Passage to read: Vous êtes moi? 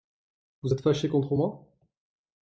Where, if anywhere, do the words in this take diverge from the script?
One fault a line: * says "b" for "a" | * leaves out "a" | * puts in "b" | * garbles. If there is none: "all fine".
* puts in "fâché contre"